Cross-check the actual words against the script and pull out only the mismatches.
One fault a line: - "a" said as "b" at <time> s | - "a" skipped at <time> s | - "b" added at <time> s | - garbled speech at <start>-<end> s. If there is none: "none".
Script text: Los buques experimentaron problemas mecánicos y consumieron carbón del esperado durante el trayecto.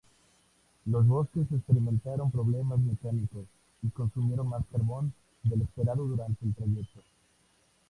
- "más" added at 4.5 s